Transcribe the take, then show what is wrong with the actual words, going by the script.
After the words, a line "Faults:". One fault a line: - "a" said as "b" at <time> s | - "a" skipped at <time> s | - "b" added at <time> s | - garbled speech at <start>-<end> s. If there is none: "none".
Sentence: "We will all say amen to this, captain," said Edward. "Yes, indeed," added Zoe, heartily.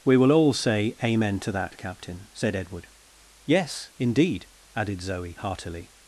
"We will all say amen to that, captain," said Edward. "Yes, indeed," added Zoe, heartily.
Faults:
- "this" said as "that" at 1.5 s